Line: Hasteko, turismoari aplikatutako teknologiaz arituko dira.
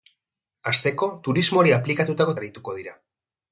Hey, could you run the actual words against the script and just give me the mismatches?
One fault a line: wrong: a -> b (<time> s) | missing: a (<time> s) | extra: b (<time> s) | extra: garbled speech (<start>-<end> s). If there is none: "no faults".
missing: teknologiaz (2.4 s)